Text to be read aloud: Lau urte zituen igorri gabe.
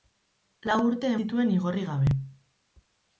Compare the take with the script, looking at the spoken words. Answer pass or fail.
pass